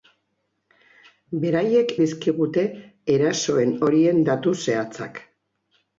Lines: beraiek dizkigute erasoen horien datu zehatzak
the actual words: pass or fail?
pass